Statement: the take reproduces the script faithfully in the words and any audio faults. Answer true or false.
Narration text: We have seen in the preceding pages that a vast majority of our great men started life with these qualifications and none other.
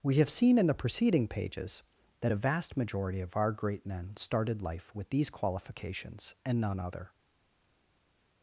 true